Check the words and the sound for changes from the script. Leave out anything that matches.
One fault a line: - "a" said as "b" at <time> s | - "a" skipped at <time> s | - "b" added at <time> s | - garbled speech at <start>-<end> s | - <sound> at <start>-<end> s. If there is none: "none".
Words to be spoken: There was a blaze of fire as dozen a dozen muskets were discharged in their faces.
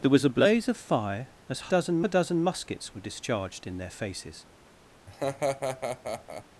- laugh at 5.1-6.4 s